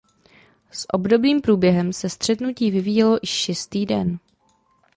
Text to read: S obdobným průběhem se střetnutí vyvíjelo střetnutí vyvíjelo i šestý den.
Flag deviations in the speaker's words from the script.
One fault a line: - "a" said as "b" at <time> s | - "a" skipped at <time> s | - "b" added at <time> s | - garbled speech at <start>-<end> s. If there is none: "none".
- "střetnutí vyvíjelo" skipped at 3.2 s